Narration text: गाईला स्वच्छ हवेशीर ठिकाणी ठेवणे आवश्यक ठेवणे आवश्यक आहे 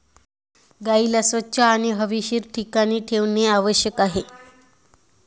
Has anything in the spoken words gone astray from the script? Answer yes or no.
yes